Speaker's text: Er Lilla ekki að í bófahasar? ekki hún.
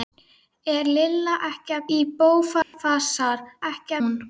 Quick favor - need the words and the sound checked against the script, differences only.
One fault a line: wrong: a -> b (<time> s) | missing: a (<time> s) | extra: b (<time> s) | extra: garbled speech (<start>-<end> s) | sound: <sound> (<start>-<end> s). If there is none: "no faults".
sound: dropout (2.6-2.7 s)